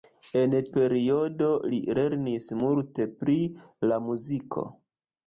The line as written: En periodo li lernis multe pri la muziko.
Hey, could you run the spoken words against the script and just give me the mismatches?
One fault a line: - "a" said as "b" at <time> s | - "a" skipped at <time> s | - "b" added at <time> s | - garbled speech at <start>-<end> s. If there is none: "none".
none